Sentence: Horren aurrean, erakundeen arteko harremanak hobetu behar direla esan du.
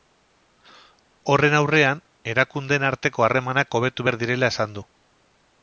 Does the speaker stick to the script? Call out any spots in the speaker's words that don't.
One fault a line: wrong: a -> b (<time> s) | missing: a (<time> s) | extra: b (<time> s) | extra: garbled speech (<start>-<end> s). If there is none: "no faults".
no faults